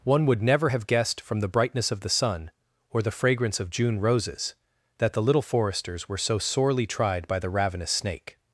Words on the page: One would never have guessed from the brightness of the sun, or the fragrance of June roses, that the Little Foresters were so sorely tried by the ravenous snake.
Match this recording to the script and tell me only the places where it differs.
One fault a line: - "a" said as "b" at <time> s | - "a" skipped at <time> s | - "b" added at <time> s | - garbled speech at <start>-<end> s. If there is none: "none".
none